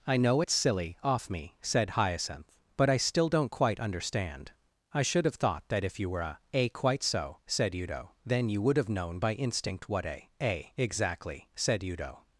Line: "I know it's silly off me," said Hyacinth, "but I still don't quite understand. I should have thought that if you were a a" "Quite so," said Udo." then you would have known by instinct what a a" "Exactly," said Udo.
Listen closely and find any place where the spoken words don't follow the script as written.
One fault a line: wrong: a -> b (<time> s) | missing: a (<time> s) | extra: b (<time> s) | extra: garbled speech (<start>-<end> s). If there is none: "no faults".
no faults